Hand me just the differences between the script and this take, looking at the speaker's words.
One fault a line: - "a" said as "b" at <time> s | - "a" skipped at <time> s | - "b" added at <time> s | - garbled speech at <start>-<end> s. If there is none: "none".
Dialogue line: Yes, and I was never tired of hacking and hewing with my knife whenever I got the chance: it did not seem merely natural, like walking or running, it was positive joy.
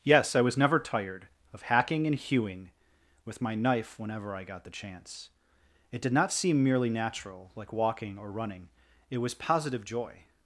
- "and" skipped at 0.3 s